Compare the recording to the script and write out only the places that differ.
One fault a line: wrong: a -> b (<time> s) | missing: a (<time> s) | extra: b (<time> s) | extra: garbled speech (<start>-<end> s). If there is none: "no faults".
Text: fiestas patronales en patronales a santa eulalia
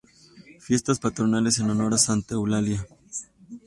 wrong: patronales -> honor (1.7 s)